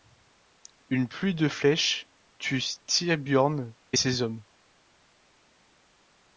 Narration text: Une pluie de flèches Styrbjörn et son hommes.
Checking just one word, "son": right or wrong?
wrong